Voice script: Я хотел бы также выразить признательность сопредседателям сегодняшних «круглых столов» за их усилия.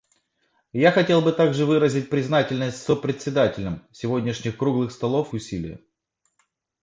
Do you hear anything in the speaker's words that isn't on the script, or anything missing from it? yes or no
yes